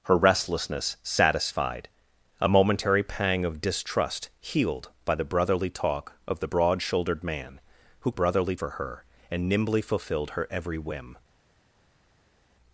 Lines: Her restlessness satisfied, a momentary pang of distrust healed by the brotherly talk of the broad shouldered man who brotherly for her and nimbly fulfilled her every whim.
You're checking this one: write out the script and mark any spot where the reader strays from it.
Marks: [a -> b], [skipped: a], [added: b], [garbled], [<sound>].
Her restlessness satisfied, a momentary pang of distrust healed by the brotherly talk of the broad shouldered man who brotherly for her and nimbly fulfilled her every whim.